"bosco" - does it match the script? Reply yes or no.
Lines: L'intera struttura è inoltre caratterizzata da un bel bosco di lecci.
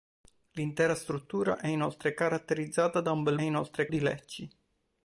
no